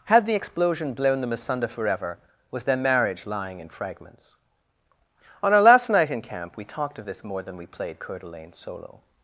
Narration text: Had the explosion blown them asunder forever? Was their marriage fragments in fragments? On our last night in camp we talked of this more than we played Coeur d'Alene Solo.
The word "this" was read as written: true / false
true